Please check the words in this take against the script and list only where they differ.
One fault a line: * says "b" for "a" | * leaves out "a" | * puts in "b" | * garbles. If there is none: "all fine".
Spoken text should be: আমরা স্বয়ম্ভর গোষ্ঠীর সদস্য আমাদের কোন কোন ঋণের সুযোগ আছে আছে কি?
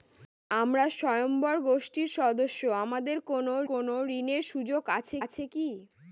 all fine